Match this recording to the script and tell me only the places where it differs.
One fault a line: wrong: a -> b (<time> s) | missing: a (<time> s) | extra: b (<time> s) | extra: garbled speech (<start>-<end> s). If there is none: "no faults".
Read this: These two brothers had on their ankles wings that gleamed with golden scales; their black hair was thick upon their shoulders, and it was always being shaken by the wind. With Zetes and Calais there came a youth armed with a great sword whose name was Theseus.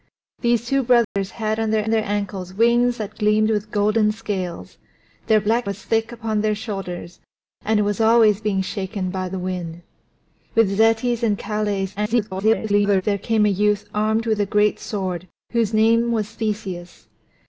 extra: their (1.9 s)
missing: hair (5.7 s)
extra: garbled speech (12.0-13.0 s)